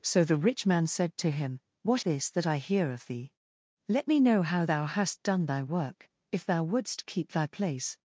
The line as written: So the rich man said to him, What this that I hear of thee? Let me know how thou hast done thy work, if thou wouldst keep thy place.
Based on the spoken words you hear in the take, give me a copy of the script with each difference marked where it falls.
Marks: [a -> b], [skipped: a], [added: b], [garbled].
So the rich man said to him, What this that I hear of thee? Let me know how thou hast done thy work, if thou wouldst keep thy place.